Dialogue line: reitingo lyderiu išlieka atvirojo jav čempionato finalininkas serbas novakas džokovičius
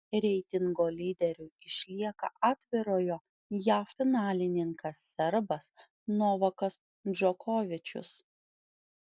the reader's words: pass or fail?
fail